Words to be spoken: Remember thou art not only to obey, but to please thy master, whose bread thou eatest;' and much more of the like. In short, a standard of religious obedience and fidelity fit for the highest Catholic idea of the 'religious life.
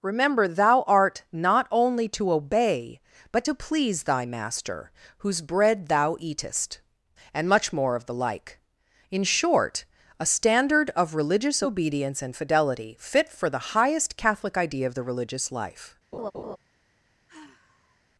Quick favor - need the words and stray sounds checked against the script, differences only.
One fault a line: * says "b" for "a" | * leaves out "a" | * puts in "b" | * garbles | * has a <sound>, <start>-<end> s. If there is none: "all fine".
* has a laugh, 16.1-16.6 s
* has a sigh, 17.3-18.0 s